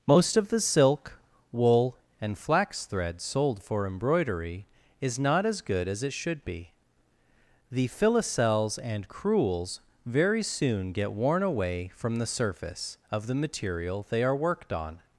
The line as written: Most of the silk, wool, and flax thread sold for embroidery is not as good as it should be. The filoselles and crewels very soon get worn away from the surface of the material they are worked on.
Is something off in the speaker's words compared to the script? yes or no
no